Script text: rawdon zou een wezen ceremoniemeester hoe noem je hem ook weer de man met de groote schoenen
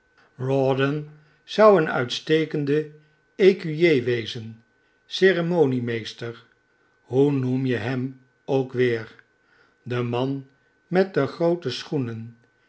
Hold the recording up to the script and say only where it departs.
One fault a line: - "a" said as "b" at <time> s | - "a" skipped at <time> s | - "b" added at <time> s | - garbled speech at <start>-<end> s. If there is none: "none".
- "uitstekende ecuyer" added at 1.9 s